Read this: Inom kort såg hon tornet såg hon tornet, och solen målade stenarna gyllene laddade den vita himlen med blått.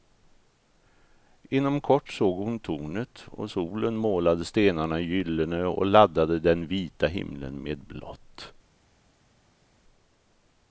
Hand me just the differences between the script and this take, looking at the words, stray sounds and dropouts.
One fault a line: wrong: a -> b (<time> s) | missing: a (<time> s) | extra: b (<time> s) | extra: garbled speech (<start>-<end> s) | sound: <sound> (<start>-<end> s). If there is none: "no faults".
missing: såg hon tornet (3.2 s)
extra: och (5.6 s)